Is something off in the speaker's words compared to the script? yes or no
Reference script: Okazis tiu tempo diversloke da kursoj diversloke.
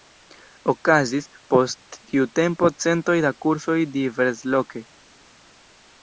yes